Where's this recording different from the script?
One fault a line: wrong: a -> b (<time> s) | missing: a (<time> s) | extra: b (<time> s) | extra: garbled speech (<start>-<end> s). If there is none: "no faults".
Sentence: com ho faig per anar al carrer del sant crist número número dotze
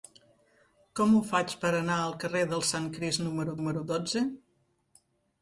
no faults